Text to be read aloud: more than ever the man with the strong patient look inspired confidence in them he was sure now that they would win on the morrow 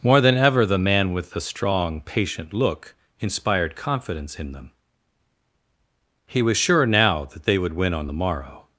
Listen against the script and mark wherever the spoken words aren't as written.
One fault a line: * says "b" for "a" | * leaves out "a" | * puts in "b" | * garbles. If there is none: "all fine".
all fine